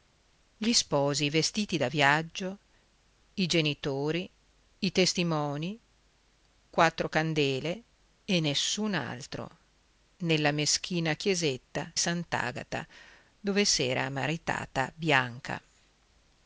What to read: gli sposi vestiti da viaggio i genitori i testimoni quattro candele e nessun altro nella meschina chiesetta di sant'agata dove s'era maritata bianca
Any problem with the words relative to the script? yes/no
yes